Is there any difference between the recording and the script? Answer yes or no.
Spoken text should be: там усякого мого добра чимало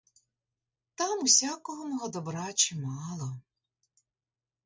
no